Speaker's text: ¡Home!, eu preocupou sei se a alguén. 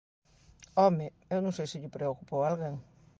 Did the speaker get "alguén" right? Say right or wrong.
right